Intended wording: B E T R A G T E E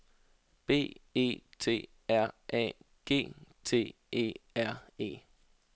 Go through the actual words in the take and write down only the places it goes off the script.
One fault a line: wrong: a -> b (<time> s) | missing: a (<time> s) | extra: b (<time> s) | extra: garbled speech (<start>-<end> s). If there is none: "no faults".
extra: R (4.5 s)